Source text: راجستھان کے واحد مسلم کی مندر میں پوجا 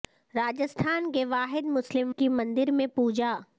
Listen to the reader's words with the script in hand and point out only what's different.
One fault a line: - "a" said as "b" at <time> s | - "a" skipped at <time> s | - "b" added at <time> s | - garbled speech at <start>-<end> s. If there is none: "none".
none